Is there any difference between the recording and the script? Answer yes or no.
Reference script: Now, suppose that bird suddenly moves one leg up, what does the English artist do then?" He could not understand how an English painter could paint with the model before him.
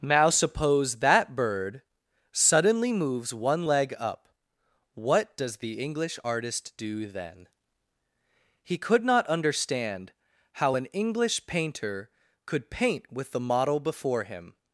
no